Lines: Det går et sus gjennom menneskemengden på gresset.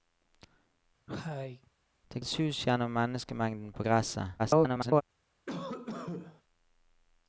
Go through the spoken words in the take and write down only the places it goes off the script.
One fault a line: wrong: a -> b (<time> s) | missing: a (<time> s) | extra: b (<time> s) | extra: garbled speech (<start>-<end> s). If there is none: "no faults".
missing: går (2.2 s)
extra: garbled speech (4.4-5.0 s)